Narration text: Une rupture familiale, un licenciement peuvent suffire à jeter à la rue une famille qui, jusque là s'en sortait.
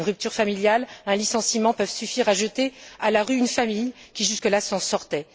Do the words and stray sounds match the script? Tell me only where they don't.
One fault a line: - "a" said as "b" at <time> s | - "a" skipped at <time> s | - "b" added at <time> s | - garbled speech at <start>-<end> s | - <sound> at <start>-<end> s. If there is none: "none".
none